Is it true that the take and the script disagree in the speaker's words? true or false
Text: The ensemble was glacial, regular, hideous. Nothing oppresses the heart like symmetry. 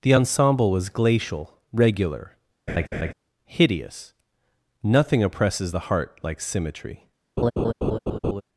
false